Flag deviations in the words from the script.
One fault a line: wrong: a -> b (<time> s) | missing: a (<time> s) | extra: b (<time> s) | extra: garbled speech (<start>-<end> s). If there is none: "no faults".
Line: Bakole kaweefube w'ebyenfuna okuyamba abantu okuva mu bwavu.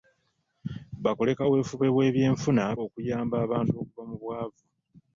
no faults